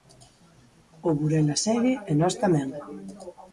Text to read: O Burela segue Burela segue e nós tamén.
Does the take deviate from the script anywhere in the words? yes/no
yes